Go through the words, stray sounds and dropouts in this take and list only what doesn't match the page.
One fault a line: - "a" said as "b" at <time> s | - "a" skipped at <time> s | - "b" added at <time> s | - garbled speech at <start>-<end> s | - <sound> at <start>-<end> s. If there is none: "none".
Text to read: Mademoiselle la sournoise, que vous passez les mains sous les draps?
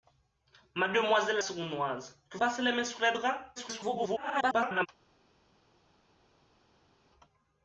- "la" skipped at 1.4 s
- "vous" skipped at 2.4 s
- garbled speech at 3.6-4.9 s